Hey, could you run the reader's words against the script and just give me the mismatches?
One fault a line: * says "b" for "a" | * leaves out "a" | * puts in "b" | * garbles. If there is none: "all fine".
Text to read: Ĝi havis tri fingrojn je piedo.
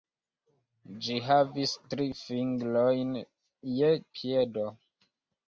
all fine